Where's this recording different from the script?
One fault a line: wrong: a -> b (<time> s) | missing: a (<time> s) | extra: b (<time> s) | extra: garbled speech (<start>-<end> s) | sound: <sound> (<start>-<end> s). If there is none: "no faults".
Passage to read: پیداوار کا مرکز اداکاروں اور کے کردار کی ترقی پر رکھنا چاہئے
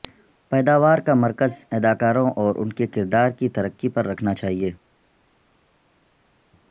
extra: ان (2.6 s)